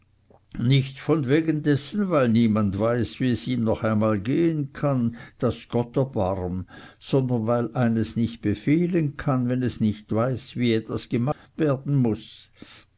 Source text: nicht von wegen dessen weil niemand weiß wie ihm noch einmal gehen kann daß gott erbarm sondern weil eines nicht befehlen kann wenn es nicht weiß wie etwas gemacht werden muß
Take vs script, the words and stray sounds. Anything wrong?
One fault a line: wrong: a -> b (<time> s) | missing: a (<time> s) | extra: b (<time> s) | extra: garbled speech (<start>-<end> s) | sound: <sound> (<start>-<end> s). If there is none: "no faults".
extra: es (3.3 s)
sound: dropout (11.3-11.5 s)